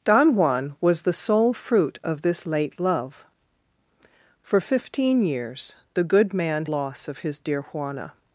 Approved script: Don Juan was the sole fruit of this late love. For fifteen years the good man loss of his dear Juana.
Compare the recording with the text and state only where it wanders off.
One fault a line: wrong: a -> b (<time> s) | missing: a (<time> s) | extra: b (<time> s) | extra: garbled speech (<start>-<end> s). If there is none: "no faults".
no faults